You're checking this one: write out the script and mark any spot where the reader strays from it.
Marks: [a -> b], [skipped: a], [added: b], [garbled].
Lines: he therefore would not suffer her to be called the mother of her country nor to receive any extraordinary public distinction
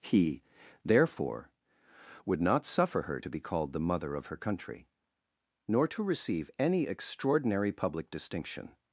he therefore would not suffer her to be called the mother of her country nor to receive any extraordinary public distinction